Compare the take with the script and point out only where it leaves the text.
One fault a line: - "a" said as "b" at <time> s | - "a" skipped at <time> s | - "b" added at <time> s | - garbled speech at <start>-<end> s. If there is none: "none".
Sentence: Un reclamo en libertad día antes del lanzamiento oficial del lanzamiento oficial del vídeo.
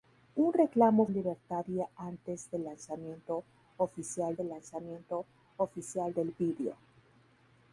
none